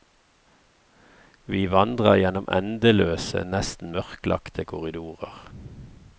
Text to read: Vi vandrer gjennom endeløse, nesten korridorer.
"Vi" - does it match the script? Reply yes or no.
yes